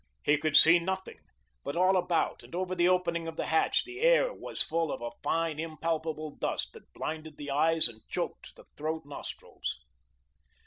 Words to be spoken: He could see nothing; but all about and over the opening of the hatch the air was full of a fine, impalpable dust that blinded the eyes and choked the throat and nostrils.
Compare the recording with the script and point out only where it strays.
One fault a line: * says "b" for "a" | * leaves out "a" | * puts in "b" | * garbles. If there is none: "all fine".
* leaves out "and"